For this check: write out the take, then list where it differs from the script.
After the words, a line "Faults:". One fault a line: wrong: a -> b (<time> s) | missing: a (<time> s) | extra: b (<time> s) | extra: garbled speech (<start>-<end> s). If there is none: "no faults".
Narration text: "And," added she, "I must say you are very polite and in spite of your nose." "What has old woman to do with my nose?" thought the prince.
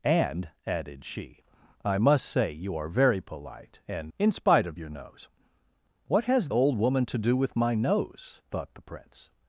"And," added she, "I must say you are very polite and in spite of your nose." "What has old woman to do with my nose?" thought the prince.
Faults:
no faults